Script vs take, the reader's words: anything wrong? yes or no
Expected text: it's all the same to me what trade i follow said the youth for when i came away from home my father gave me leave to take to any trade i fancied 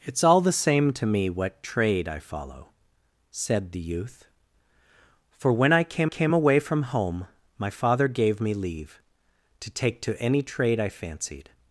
yes